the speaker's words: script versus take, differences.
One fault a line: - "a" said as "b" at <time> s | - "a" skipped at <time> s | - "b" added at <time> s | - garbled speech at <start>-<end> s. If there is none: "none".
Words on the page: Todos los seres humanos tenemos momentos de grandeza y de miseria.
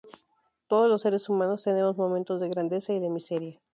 none